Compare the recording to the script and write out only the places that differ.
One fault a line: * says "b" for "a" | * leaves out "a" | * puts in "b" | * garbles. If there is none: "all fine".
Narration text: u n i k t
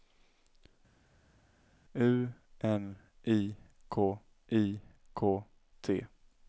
* puts in "i k"